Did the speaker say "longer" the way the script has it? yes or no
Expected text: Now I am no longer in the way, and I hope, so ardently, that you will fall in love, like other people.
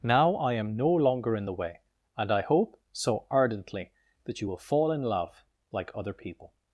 yes